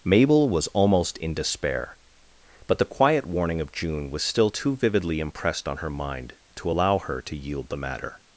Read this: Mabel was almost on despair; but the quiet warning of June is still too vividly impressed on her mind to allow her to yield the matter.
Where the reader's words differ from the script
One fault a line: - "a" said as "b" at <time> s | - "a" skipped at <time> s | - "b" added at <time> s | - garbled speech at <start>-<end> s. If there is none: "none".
- "on" said as "in" at 1.2 s
- "is" said as "was" at 4.1 s